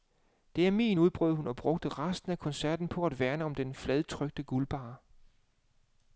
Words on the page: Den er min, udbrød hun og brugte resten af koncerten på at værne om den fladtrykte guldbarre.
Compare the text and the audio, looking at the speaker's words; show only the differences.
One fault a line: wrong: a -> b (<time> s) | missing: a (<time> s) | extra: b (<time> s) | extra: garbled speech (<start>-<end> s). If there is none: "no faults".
wrong: Den -> Det (0.6 s)